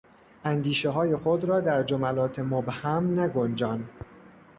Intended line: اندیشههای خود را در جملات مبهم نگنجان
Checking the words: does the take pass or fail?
pass